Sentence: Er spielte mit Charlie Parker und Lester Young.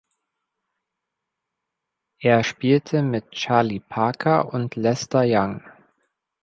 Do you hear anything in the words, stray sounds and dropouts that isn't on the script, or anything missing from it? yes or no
no